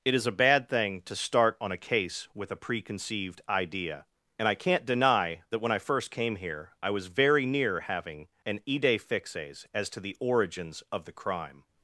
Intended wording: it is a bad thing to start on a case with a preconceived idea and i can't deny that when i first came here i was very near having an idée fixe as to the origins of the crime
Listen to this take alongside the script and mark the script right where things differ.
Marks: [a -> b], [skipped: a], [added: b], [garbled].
it is a bad thing to start on a case with a preconceived idea and i can't deny that when i first came here i was very near having an idée fixe as to the origins of the crime